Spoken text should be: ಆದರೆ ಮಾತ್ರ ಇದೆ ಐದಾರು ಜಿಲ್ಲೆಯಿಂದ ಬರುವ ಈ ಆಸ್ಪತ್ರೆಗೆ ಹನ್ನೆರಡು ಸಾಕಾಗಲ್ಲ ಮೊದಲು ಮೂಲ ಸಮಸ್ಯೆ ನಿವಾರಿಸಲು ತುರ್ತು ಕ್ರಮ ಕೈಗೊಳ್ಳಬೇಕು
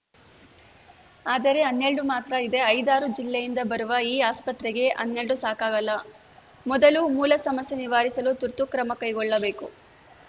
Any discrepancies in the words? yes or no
yes